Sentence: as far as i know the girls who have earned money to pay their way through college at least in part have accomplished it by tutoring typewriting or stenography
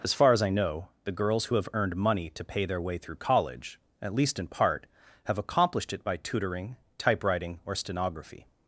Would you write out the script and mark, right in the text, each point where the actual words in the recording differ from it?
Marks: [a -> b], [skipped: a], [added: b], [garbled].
as far as i know the girls who have earned money to pay their way through college at least in part have accomplished it by tutoring typewriting or stenography